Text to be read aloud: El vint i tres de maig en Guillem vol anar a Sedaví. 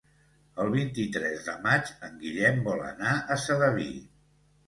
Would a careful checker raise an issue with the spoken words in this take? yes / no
no